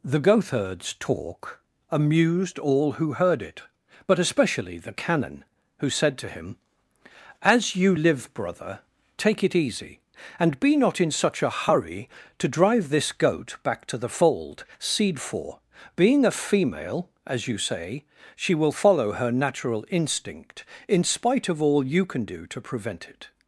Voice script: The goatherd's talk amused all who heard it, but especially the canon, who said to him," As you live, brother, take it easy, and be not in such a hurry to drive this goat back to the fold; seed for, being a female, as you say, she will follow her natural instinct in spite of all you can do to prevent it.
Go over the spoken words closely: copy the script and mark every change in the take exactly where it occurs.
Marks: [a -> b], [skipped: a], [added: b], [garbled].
The goatherd's talk amused all who heard it, but especially the canon, who said to him," As you live, brother, take it easy, and be not in such a hurry to drive this goat back to the fold; seed for, being a female, as you say, she will follow her natural instinct in spite of all you can do to prevent it.